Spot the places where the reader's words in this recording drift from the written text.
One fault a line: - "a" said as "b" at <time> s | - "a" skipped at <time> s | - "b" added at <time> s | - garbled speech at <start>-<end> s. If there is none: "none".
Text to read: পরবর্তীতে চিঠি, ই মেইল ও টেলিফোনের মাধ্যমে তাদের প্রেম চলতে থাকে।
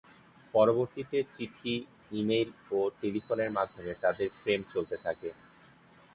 none